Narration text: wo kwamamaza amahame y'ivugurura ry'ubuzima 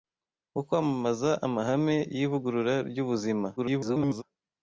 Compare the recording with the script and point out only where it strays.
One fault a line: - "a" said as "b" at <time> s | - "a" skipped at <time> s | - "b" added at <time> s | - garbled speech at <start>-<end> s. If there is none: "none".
- garbled speech at 3.6-4.2 s